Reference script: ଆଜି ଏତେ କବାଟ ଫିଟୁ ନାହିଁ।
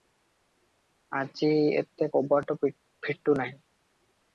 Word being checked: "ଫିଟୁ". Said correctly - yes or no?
yes